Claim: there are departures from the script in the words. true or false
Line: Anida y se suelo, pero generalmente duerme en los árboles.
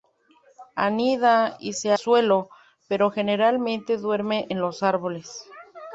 false